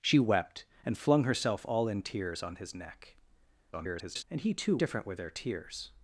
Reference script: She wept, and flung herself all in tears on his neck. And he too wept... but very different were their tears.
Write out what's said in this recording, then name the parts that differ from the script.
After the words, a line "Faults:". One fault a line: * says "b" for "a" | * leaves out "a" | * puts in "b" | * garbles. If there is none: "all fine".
She wept, and flung herself all in tears on his neck. [garbled] And he too different were their tears.
Faults:
* garbles
* leaves out "wept but very"